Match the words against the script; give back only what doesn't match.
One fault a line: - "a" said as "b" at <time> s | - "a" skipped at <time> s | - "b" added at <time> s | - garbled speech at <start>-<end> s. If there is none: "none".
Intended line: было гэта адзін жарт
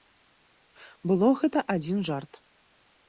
none